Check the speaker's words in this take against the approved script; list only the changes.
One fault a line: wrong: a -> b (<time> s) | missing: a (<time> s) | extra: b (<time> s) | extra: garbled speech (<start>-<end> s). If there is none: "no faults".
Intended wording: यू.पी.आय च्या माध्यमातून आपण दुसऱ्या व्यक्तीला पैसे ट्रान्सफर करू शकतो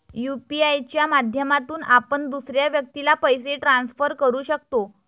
no faults